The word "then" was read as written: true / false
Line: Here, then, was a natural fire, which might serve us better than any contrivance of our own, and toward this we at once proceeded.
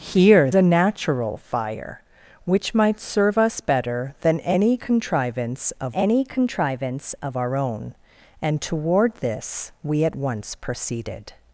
false